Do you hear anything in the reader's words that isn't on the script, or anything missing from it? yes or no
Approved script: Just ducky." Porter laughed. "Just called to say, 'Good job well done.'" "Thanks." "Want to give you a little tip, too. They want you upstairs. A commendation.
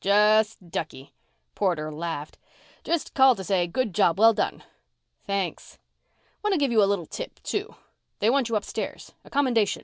no